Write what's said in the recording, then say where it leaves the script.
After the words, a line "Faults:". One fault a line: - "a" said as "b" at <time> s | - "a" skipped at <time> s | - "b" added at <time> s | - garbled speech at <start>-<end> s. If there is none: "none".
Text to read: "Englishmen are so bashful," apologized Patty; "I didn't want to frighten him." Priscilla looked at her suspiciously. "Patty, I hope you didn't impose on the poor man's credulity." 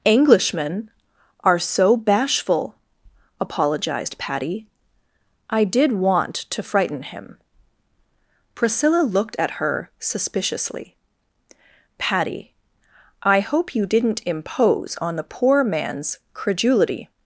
"Englishmen are so bashful," apologized Patty; "I did want to frighten him." Priscilla looked at her suspiciously. "Patty, I hope you didn't impose on the poor man's credulity."
Faults:
- "didn't" said as "did" at 5.6 s